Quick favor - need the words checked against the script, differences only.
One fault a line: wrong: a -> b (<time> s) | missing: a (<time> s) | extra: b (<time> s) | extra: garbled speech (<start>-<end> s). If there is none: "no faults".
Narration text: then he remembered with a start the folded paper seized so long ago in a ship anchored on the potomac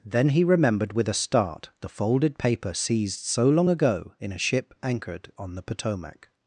no faults